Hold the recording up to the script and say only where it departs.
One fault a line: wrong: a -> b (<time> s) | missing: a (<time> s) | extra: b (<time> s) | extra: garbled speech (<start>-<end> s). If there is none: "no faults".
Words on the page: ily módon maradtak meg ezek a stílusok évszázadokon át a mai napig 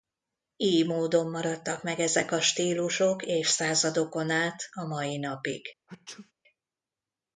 no faults